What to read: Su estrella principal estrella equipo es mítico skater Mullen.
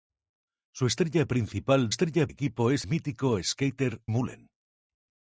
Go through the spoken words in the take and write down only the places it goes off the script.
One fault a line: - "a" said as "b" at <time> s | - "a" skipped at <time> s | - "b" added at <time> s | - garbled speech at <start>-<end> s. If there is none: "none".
none